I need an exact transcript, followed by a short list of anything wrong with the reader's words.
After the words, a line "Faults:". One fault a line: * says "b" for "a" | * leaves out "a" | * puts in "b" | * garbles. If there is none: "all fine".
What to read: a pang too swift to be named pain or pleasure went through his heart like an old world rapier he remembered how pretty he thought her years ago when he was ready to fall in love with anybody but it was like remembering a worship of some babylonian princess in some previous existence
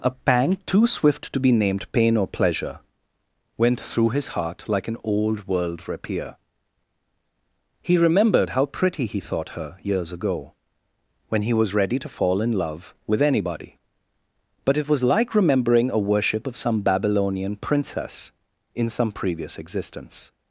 a pang too swift to be named pain or pleasure went through his heart like an old world rapier he remembered how pretty he thought her years ago when he was ready to fall in love with anybody but it was like remembering a worship of some babylonian princess in some previous existence
Faults:
all fine